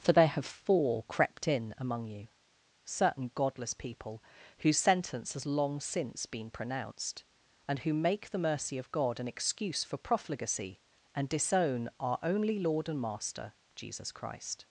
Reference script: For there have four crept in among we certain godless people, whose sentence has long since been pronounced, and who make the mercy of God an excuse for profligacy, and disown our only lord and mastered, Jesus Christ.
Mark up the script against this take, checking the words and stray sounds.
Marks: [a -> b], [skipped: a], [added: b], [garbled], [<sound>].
For there have four crept in among [we -> you] certain godless people, whose sentence has long since been pronounced, and who make the mercy of God an excuse for profligacy, and disown our only lord and [mastered, -> master] Jesus Christ.